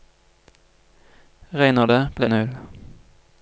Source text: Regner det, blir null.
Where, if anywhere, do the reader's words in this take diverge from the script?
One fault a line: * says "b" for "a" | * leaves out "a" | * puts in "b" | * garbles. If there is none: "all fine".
all fine